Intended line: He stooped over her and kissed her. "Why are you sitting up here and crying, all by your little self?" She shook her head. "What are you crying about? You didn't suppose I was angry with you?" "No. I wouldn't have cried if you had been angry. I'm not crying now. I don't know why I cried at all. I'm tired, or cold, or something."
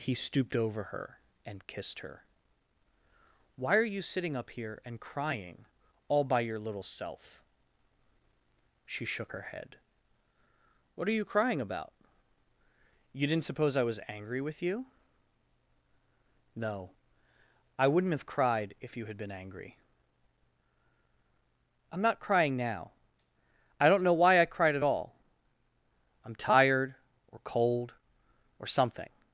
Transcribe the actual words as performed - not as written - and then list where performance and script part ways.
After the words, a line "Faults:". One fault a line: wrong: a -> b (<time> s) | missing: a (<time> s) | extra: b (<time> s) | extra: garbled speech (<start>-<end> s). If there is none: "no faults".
He stooped over her and kissed her. "Why are you sitting up here and crying, all by your little self?" She shook her head. "What are you crying about? You didn't suppose I was angry with you?" "No. I wouldn't have cried if you had been angry. I'm not crying now. I don't know why I cried at all. I'm tired, or cold, or something."
Faults:
no faults